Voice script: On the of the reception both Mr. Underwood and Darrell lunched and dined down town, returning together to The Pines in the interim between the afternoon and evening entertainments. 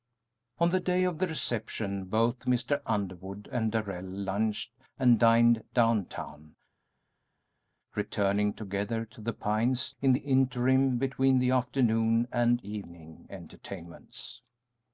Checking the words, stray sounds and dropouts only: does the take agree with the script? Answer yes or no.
no